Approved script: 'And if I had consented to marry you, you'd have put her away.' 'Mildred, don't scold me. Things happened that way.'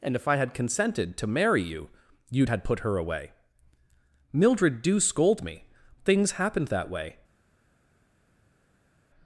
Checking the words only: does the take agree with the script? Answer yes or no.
no